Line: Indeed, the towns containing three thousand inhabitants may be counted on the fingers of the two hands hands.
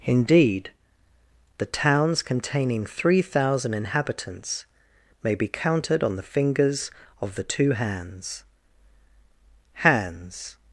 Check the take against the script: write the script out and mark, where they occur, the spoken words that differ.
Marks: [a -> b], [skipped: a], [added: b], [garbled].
Indeed, the towns containing three thousand inhabitants may be counted on the fingers of the two hands hands.